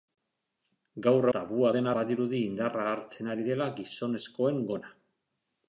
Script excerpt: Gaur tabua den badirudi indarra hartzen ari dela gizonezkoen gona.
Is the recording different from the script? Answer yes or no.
no